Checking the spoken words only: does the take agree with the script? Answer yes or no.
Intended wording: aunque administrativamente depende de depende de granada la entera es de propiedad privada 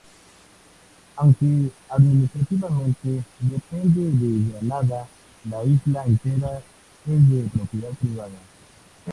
no